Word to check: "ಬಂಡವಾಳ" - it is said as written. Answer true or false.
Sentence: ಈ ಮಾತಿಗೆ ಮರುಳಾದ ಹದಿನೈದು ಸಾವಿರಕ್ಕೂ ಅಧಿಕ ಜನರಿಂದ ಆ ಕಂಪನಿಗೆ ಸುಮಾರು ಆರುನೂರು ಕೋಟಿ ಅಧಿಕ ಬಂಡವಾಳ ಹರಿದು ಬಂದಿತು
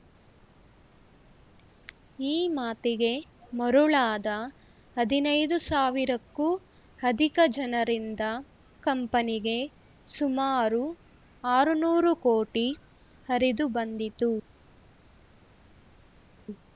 false